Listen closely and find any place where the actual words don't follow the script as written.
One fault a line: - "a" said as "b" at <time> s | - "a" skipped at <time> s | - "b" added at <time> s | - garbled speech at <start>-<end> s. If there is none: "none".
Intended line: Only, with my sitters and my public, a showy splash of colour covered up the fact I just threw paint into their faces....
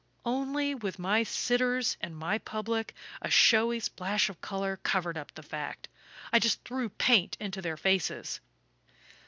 none